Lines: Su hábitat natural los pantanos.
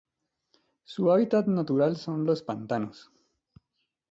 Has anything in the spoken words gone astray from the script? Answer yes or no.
yes